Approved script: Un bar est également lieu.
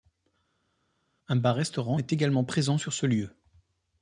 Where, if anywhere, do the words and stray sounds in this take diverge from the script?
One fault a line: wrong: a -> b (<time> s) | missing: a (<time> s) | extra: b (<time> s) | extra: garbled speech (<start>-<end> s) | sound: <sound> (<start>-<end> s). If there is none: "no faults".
extra: restaurant (1.6 s)
extra: présent sur ce (2.4 s)